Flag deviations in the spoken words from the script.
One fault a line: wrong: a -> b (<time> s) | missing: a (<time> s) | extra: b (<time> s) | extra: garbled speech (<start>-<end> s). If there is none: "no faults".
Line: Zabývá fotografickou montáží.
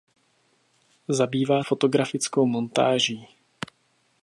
no faults